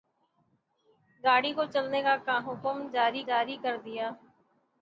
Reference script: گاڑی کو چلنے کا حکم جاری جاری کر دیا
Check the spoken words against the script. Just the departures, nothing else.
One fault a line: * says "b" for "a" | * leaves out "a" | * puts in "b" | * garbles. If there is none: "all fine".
all fine